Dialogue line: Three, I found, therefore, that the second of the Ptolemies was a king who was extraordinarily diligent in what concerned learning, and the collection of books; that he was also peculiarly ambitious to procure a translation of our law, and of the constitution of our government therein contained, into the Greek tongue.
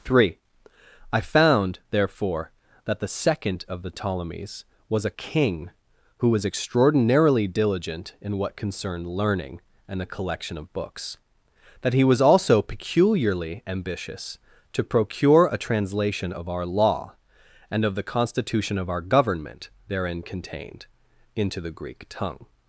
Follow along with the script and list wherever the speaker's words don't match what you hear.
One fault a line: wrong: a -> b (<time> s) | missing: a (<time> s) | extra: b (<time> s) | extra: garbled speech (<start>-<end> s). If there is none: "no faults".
no faults